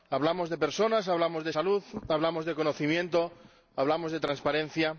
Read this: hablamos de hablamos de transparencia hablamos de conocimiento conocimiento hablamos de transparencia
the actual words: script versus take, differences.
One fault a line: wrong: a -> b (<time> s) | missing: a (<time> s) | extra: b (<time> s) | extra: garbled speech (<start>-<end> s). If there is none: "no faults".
extra: personas (0.6 s)
wrong: transparencia -> salud (1.5 s)
missing: conocimiento (3.3 s)